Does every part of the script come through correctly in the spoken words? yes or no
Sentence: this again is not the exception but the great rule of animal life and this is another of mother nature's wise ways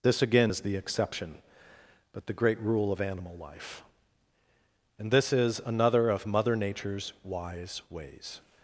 no